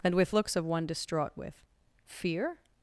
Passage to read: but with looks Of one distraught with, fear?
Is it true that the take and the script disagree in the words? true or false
true